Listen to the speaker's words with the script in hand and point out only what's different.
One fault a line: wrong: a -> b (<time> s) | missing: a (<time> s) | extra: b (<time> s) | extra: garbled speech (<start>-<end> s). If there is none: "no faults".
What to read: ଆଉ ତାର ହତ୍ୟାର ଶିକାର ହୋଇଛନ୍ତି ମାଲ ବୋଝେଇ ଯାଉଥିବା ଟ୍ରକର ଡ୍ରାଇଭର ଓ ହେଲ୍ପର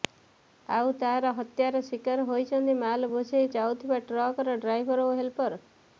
no faults